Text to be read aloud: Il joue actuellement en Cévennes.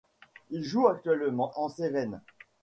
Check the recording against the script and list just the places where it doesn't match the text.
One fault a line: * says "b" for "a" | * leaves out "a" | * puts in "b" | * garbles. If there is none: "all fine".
all fine